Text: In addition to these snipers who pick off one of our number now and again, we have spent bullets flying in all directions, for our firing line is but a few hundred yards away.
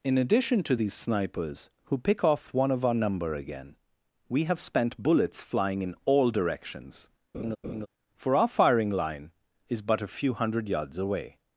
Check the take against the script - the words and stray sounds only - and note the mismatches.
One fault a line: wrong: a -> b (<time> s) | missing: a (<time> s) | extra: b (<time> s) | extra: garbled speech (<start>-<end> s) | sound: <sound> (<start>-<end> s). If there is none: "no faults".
missing: now and (3.3 s)
sound: laugh (7.3-7.9 s)